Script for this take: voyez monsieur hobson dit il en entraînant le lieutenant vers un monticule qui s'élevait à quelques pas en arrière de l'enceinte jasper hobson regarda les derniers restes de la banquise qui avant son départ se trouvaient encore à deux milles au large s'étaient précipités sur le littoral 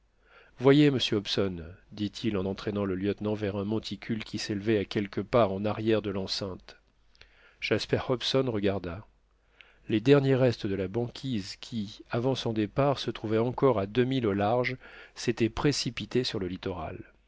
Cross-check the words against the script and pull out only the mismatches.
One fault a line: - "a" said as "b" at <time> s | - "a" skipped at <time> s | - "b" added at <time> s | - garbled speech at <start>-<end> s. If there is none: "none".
none